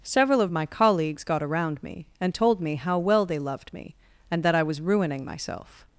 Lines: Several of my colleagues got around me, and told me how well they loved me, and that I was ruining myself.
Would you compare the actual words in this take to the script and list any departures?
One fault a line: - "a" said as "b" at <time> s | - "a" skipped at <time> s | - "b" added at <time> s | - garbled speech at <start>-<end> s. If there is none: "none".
none